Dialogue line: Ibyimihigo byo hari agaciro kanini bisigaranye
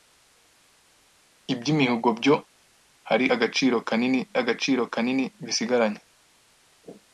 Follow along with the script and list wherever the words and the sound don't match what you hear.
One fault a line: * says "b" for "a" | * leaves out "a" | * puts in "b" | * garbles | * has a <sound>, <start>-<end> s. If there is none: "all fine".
* puts in "agaciro kanini"